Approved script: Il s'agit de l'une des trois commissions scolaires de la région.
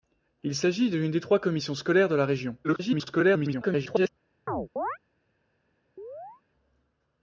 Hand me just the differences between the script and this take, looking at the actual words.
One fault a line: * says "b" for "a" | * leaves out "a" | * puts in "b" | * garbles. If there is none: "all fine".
* garbles